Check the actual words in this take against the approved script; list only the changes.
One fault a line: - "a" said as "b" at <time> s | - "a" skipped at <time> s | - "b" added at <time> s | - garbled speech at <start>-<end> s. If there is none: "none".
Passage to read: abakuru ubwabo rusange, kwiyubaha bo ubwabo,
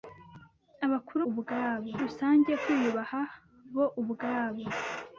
none